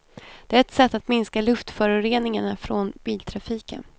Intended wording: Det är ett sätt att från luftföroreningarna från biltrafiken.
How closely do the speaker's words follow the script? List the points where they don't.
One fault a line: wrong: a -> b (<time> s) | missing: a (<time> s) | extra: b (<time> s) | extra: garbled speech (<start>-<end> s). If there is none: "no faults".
wrong: från -> minska (1.1 s)